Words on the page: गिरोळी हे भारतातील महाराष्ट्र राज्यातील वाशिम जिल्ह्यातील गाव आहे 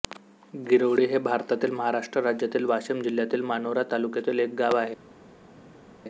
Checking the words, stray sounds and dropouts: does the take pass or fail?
fail